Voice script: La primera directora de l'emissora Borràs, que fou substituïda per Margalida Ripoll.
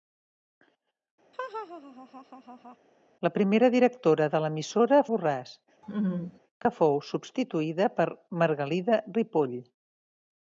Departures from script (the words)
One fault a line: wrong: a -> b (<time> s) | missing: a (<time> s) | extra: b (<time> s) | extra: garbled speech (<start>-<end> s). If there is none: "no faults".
no faults